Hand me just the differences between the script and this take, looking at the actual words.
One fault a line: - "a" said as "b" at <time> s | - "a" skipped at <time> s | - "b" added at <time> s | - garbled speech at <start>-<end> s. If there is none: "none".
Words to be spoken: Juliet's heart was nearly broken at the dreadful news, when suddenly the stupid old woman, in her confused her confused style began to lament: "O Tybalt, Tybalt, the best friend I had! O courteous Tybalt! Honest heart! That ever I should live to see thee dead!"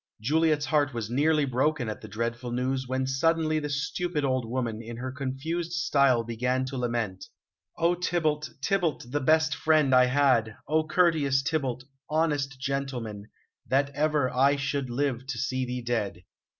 - "her confused" skipped at 5.7 s
- "heart" said as "gentleman" at 12.6 s